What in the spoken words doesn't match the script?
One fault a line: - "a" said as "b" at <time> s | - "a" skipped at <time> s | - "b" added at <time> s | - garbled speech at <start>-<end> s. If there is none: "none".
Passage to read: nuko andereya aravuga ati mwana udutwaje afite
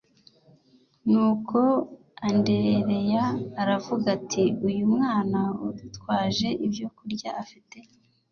- "uyu" added at 4.7 s
- "ibyokurya" added at 6.7 s